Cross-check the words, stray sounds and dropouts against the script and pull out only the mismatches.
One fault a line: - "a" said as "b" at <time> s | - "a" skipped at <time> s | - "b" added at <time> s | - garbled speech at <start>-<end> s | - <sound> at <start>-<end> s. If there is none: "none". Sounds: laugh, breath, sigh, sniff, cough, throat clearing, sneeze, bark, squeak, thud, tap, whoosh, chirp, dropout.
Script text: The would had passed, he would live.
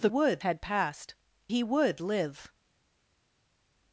none